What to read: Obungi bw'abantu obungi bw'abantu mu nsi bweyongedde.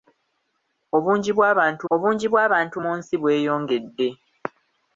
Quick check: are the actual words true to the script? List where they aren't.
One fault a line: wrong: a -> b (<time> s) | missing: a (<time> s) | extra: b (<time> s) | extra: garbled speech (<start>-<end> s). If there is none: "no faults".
no faults